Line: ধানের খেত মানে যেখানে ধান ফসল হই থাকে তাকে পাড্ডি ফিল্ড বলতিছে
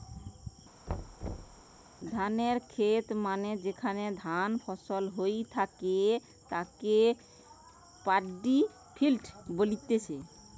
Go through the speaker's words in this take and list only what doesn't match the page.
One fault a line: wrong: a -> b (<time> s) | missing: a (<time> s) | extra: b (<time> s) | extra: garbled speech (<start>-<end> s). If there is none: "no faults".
no faults